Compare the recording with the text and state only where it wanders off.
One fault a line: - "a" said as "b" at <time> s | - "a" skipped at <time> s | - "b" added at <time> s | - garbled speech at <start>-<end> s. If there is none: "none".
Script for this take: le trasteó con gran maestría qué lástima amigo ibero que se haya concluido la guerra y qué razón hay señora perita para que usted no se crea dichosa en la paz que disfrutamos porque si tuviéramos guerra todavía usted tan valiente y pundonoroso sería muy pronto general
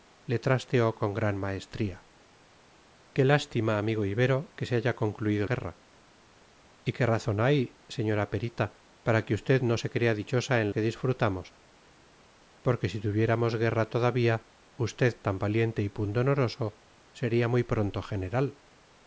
- "la" skipped at 5.5 s
- "la paz" skipped at 10.7 s